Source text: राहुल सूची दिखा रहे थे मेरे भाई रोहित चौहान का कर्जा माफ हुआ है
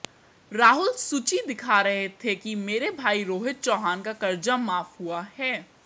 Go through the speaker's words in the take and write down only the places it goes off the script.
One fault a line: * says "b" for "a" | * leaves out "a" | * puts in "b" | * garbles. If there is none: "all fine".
* puts in "कि"